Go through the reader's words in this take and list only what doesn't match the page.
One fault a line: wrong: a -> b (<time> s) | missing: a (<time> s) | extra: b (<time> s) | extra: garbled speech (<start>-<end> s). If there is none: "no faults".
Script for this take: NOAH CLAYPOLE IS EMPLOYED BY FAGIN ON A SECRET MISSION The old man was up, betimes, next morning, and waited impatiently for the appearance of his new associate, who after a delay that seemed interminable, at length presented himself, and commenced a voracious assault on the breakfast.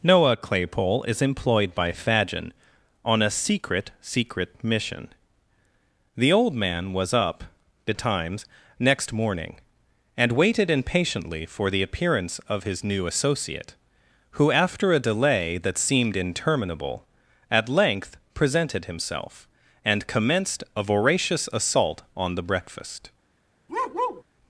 extra: SECRET (4.0 s)